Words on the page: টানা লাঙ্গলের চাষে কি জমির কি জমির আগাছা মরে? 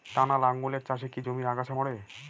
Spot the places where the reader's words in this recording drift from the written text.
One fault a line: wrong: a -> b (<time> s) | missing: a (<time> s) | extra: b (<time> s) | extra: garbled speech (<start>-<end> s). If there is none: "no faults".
missing: কি জমির (1.5 s)